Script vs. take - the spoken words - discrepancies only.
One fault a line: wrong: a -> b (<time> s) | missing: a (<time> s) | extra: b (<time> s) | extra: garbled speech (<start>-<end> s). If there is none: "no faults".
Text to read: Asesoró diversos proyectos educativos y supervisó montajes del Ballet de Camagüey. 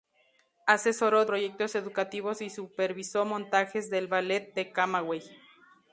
missing: diversos (1.2 s)